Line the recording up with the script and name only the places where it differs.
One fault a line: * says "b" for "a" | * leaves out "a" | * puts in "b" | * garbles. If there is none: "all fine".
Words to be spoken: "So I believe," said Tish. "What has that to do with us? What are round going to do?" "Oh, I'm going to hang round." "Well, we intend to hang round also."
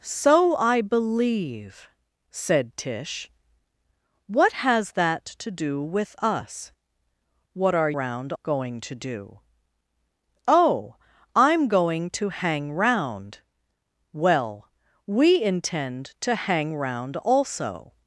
all fine